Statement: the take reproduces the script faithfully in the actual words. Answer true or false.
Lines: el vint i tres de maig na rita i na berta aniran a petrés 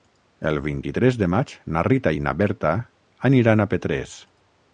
true